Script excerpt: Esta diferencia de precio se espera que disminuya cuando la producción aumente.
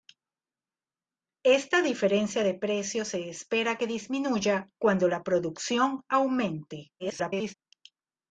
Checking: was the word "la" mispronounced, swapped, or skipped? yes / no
no